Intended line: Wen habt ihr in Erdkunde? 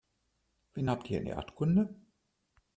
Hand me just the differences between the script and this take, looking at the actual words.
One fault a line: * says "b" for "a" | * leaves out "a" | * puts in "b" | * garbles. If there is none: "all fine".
all fine